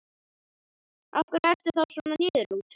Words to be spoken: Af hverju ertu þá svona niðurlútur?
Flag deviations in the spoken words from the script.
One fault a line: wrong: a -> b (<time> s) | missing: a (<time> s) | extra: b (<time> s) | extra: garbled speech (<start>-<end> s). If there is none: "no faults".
no faults